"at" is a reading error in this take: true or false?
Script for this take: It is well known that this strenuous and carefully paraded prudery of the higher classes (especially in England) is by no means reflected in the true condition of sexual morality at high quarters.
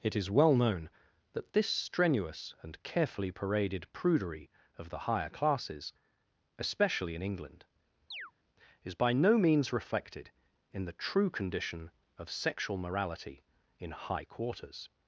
true